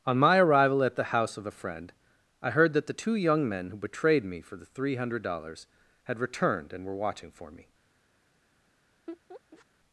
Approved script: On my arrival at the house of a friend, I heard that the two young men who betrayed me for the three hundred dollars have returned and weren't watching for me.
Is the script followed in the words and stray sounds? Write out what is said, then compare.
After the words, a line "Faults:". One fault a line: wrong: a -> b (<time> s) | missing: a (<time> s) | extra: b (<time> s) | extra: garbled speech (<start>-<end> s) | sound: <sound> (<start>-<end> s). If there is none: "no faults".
On my arrival at the house of a friend, I heard that the two young men who betrayed me for the three hundred dollars had returned and were watching for me.
Faults:
wrong: have -> had (6.0 s)
wrong: weren't -> were (6.8 s)
sound: laugh (9.1-9.7 s)